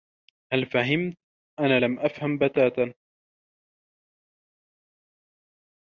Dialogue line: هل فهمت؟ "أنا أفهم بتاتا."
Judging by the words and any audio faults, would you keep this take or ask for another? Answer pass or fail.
fail